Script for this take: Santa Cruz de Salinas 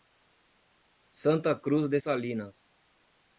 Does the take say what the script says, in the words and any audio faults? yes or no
yes